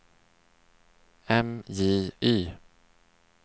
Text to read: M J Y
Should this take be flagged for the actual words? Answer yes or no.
no